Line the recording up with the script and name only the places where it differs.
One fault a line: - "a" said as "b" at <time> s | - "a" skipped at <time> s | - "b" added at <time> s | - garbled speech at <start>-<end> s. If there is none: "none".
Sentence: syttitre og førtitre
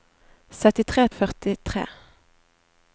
none